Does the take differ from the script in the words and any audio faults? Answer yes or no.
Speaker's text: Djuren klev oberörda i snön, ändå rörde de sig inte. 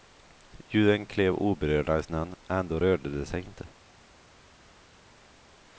no